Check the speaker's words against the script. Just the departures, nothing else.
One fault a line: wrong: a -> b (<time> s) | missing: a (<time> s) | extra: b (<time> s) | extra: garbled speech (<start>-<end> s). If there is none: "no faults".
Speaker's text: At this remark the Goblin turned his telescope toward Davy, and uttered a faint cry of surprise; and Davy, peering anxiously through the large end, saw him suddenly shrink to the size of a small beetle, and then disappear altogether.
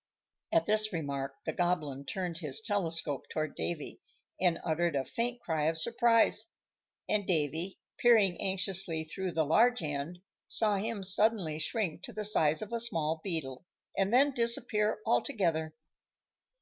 no faults